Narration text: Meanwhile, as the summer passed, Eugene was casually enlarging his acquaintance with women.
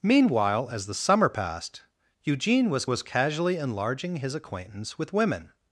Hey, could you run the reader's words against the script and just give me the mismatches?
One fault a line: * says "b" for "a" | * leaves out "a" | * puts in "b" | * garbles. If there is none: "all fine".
* puts in "was"